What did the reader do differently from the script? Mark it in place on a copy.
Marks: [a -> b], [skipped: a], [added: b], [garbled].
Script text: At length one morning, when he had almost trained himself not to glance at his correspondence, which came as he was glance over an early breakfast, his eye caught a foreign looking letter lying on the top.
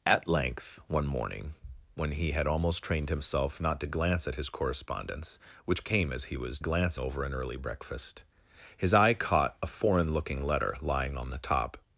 At length one morning, when he had almost trained himself not to glance at his correspondence, which came as he was glance over an early breakfast, his eye caught a foreign looking letter lying on the top.